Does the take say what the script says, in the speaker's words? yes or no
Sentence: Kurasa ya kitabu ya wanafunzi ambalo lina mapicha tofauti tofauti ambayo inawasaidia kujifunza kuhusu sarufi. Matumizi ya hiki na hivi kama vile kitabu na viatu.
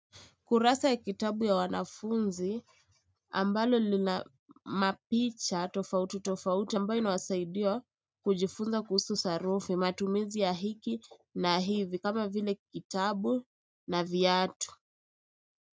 yes